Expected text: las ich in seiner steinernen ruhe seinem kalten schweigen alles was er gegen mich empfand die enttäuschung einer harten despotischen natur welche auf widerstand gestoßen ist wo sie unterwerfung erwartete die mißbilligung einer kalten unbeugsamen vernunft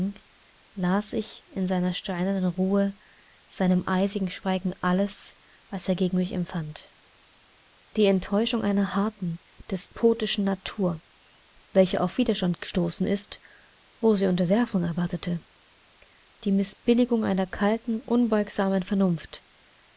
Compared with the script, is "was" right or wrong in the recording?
right